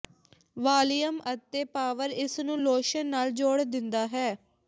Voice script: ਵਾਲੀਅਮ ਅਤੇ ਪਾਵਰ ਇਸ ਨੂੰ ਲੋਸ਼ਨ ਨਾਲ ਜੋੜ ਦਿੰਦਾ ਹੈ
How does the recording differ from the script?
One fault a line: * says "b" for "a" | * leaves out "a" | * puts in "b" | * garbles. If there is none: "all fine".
all fine